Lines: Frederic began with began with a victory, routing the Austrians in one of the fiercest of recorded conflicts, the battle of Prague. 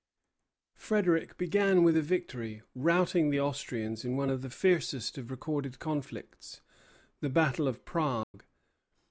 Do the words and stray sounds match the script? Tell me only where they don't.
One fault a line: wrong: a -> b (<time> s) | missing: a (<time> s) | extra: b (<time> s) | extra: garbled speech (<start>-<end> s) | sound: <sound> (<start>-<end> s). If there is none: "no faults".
missing: began with (1.9 s)
sound: dropout (8.2-8.3 s)